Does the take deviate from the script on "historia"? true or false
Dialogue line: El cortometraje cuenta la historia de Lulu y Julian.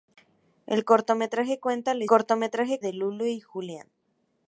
true